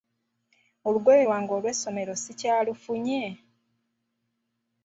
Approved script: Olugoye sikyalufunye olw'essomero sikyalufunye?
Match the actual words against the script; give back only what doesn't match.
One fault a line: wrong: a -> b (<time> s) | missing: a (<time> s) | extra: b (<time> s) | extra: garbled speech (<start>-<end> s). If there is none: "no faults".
wrong: sikyalufunye -> lwange (1.3 s)